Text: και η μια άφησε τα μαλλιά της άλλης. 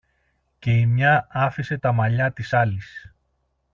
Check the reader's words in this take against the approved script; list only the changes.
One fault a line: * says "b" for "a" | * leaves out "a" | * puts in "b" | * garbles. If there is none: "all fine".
all fine